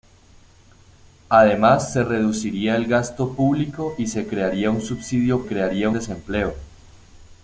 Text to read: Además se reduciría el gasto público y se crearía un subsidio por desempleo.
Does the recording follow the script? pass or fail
fail